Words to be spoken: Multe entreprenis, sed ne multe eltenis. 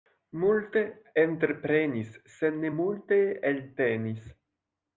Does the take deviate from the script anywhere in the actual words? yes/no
no